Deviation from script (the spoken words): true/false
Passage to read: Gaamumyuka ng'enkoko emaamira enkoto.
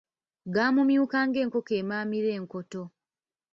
false